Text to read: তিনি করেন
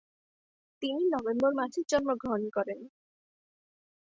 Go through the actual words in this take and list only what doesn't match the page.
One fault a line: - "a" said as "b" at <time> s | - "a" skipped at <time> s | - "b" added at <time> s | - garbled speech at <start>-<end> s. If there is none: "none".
- "নভেম্বর মাসে জন্মগ্রহণ" added at 1.1 s